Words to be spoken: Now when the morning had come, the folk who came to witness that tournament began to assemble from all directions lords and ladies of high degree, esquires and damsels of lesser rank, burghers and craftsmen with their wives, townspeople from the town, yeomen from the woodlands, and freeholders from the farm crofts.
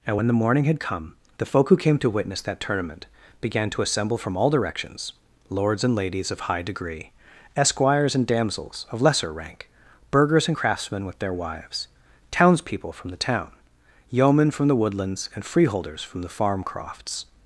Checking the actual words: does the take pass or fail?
fail